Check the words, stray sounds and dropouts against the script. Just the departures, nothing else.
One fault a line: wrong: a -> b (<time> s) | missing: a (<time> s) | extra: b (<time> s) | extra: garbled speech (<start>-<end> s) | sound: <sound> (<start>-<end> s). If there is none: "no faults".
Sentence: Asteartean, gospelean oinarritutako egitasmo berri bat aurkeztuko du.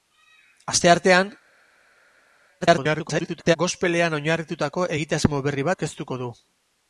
extra: garbled speech (2.6-3.6 s)
missing: bat (5.7 s)